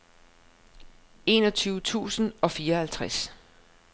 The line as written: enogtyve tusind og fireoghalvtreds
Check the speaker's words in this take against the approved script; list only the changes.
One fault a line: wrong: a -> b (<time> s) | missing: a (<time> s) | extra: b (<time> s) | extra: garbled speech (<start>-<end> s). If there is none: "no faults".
no faults